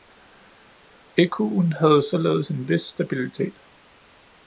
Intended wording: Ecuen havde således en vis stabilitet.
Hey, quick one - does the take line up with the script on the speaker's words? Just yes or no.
yes